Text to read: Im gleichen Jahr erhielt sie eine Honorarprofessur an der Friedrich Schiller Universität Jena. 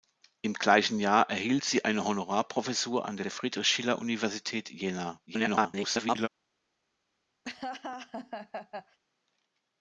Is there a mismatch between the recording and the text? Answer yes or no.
yes